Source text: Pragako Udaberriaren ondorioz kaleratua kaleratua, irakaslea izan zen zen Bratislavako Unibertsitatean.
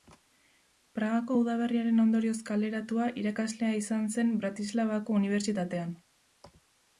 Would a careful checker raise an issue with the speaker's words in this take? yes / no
yes